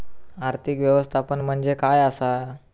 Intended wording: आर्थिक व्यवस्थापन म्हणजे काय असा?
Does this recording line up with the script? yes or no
yes